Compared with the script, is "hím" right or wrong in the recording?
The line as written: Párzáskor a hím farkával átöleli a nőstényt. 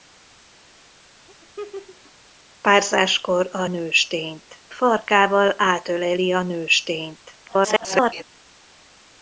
wrong